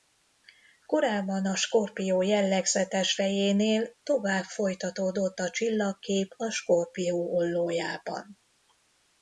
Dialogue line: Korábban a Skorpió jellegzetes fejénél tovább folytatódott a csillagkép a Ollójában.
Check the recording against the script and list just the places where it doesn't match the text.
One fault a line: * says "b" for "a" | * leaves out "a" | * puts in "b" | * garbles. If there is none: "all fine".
* puts in "Skorpió"